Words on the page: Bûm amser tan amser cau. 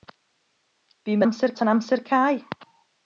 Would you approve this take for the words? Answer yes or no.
yes